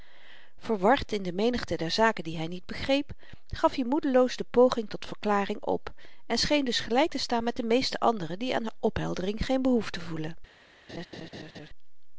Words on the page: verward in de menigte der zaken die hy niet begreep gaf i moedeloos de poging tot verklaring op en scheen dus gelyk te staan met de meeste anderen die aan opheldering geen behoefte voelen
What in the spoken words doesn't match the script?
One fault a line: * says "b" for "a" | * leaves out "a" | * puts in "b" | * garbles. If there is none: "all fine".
all fine